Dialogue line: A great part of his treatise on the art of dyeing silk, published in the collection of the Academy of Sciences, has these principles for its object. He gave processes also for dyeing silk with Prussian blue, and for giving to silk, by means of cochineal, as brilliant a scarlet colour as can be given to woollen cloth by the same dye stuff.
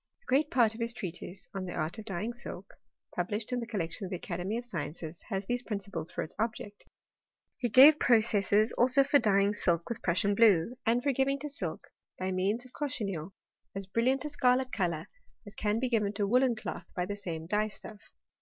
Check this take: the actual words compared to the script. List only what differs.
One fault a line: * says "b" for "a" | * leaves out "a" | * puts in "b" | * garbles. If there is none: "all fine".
all fine